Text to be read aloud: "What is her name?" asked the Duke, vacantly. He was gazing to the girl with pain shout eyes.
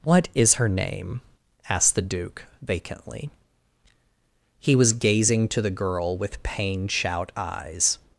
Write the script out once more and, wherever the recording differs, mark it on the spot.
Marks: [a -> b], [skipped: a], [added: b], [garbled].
"What is her name?" asked the Duke, vacantly. He was gazing to the girl with pain shout eyes.